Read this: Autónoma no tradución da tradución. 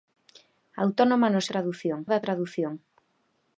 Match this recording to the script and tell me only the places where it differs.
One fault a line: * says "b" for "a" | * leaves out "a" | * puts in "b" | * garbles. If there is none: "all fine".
all fine